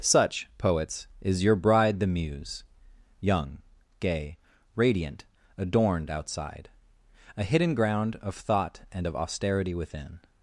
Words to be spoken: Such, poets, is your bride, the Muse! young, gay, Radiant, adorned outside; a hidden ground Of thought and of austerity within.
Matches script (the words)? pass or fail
pass